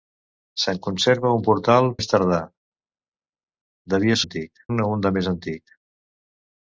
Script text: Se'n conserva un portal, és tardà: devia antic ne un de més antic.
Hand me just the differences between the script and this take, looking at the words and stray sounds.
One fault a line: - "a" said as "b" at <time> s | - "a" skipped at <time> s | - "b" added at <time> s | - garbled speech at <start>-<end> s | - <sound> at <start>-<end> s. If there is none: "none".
none